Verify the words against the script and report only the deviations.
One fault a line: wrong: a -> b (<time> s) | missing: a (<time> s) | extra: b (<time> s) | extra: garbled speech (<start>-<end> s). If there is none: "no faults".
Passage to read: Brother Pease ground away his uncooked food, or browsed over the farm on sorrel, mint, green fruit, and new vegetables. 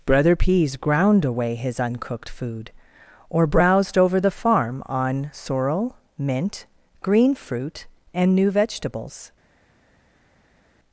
no faults